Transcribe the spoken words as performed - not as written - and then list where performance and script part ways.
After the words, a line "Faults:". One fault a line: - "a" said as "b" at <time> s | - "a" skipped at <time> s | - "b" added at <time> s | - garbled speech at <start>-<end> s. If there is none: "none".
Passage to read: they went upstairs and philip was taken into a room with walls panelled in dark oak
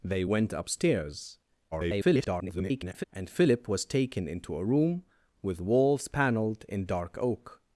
they went upstairs [garbled] and philip was taken into a room with walls panelled in dark oak
Faults:
- garbled speech at 1.7-3.0 s